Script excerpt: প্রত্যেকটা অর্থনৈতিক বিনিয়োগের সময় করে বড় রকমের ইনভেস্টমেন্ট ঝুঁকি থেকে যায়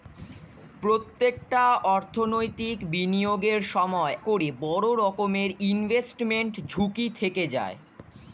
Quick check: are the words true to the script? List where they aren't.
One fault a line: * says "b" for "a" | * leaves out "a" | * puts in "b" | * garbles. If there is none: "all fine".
all fine